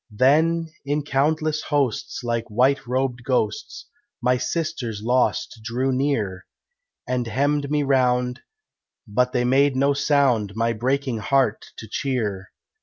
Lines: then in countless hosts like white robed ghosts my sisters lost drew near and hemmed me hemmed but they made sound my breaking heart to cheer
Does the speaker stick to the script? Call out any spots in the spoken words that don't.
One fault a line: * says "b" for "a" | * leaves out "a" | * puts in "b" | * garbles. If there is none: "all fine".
* says "round" for "hemmed"
* puts in "no"